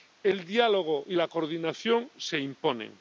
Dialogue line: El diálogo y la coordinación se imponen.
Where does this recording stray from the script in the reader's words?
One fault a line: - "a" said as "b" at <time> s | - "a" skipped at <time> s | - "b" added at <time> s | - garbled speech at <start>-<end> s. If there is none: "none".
none